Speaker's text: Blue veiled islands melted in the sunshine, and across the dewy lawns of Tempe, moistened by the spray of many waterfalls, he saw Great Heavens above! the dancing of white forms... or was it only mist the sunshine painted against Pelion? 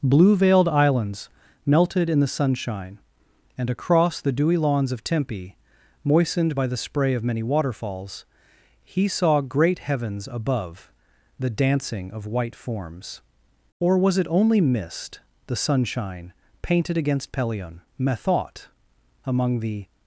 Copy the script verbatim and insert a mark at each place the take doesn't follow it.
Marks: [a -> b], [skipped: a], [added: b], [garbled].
Blue veiled islands melted in the sunshine, and across the dewy lawns of Tempe, moistened by the spray of many waterfalls, he saw Great Heavens above! the dancing of white forms... or was it only mist the sunshine painted against Pelion? [added: Methought among the]